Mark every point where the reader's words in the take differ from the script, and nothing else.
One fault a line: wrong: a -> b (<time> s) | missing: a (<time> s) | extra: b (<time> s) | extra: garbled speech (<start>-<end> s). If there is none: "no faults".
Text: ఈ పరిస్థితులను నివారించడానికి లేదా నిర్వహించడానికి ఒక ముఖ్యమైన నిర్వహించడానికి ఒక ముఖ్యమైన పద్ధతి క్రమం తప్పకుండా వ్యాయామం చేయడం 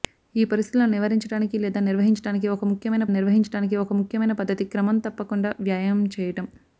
no faults